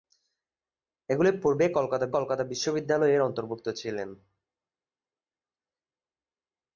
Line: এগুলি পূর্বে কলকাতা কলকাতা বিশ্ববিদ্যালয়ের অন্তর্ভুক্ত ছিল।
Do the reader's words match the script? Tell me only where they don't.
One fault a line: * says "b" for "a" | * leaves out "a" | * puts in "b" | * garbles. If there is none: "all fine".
all fine